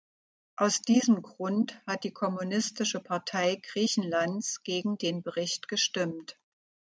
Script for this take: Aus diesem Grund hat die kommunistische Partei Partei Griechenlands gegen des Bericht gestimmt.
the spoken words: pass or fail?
fail